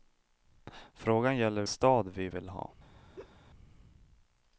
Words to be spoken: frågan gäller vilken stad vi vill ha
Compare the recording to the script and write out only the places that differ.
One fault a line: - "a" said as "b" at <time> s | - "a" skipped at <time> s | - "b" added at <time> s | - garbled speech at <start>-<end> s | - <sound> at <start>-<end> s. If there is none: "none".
- "vilken" skipped at 1.6 s
- laugh at 3.2-3.4 s